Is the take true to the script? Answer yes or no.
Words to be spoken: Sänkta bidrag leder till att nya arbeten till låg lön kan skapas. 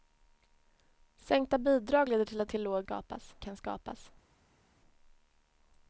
no